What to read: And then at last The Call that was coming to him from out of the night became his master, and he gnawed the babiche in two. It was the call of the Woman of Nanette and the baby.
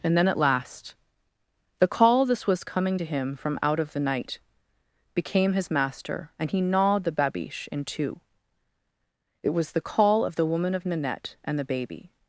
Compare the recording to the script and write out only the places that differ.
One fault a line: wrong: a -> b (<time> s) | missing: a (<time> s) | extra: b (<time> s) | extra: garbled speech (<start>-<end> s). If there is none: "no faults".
wrong: that -> this (2.2 s)